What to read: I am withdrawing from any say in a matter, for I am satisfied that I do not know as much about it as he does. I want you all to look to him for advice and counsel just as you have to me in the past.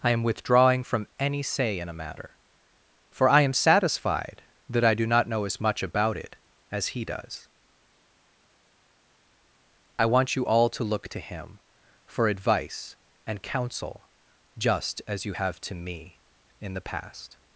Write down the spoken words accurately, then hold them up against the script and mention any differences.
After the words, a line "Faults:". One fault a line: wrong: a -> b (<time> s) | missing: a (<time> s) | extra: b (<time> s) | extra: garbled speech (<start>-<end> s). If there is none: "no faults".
I am withdrawing from any say in a matter, for I am satisfied that I do not know as much about it as he does. I want you all to look to him for advice and counsel just as you have to me in the past.
Faults:
no faults